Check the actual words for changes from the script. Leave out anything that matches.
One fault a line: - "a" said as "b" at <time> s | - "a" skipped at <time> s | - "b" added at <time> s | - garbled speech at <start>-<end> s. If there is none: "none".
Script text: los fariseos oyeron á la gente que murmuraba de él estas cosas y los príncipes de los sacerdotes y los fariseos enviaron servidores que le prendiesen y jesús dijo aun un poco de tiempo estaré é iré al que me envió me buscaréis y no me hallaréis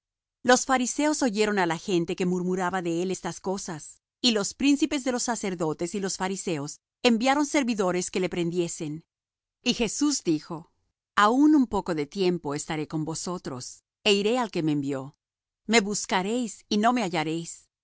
- "con vosotros" added at 12.9 s